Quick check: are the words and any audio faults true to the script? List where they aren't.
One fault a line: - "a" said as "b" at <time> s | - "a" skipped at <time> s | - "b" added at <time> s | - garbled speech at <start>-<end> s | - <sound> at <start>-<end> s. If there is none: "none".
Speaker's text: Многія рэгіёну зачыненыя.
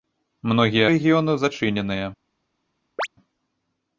- chirp at 3.0-3.1 s